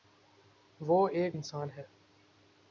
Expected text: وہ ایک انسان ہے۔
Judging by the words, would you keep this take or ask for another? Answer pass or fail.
pass